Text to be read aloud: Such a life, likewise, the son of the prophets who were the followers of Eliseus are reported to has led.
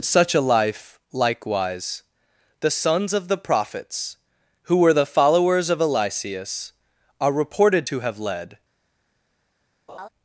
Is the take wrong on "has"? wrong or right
wrong